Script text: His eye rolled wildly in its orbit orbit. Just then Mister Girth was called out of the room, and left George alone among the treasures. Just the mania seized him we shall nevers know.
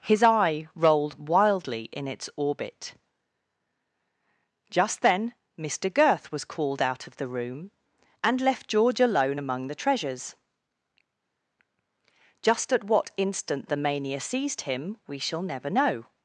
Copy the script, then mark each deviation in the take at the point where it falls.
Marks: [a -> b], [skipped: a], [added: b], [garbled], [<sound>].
His eye rolled wildly in its orbit [skipped: orbit.] Just then Mister Girth was called out of the room, and left George alone among the treasures. Just [added: at what instant] the mania seized him we shall [nevers -> never] know.